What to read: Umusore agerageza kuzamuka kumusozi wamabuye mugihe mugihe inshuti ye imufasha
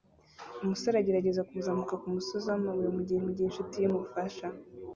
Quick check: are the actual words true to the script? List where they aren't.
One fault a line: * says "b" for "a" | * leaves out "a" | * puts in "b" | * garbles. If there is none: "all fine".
all fine